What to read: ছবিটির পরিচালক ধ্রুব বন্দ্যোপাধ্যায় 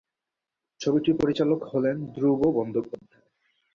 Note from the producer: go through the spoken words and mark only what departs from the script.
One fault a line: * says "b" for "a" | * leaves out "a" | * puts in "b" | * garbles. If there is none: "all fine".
* puts in "হলেন"